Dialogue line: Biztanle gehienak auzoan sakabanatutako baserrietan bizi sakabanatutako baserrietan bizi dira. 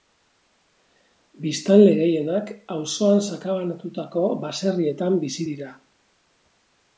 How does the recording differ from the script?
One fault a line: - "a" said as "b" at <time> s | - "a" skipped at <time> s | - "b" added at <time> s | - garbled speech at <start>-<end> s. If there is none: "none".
- "sakabanatutako baserrietan bizi" skipped at 5.5 s